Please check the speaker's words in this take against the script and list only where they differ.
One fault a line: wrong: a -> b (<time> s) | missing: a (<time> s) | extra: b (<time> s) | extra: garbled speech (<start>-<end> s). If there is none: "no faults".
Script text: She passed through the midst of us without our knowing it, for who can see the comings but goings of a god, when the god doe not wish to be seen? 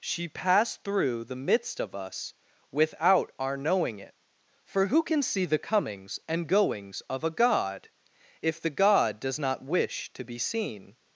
wrong: but -> and (6.3 s)
wrong: when -> if (8.4 s)
wrong: doe -> does (9.2 s)